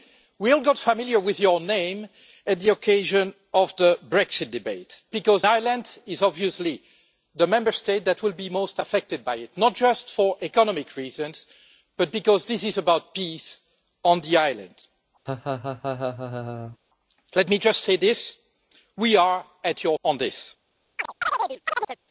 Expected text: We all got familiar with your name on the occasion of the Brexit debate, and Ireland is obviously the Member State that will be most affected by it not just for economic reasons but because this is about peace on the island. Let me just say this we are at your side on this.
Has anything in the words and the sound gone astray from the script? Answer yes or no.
yes